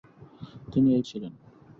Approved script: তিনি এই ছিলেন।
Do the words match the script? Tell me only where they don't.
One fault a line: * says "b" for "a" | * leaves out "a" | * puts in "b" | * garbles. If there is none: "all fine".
all fine